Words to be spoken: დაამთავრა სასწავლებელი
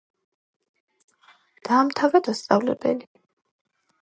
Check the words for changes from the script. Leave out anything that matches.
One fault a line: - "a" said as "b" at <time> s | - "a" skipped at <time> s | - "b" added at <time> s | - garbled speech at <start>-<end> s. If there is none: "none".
none